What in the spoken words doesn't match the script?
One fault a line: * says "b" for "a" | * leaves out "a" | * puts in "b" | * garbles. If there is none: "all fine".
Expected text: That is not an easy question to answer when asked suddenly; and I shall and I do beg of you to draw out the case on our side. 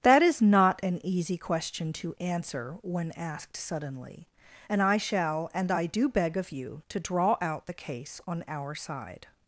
all fine